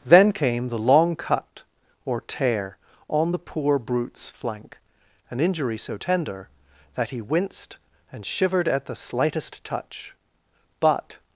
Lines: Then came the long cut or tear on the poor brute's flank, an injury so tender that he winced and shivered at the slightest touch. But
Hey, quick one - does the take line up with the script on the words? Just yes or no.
yes